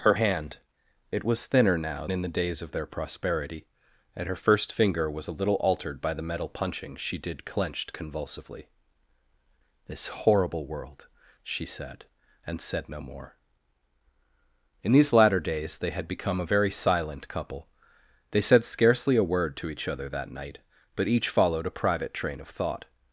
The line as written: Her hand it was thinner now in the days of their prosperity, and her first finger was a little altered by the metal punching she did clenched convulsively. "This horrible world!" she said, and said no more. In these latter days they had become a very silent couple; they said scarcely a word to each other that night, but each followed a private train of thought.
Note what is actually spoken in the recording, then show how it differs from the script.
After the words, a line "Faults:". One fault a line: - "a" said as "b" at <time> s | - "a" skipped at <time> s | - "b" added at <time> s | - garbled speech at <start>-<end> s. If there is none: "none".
Her hand it was thinner now in the days of their prosperity, and her first finger was a little altered by the metal punching she did clenched convulsively. "This horrible world!" she said, and said no more. In these latter days they had become a very silent couple; they said scarcely a word to each other that night, but each followed a private train of thought.
Faults:
none